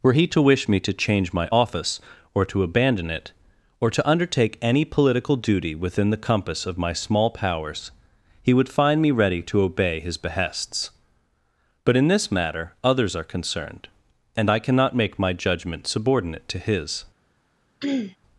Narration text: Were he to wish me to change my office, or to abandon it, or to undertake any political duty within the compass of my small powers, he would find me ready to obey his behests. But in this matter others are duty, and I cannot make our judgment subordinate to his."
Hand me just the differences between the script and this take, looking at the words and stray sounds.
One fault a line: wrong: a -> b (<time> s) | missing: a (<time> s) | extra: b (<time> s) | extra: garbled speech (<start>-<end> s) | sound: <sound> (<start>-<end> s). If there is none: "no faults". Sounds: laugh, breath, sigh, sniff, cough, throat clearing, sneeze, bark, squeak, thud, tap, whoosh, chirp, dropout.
wrong: duty -> concerned (13.2 s)
wrong: our -> my (15.2 s)
sound: throat clearing (17.8-18.2 s)